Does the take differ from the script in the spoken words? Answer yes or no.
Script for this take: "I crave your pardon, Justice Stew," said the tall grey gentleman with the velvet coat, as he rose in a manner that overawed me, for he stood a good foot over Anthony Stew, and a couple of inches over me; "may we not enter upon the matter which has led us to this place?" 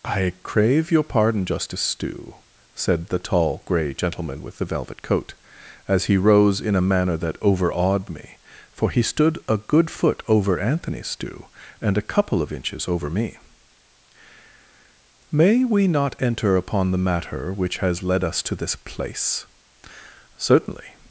yes